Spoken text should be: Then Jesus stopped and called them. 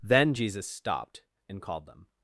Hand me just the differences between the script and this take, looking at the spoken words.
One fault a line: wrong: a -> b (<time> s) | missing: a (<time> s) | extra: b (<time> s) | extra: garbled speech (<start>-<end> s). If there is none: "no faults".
no faults